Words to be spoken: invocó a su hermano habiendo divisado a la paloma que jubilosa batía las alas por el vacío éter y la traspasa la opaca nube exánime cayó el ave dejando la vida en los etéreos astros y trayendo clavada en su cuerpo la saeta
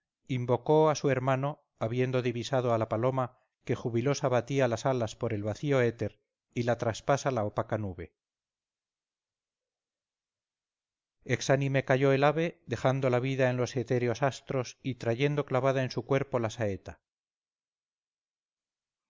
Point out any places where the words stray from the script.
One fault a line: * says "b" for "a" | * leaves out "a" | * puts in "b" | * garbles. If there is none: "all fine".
all fine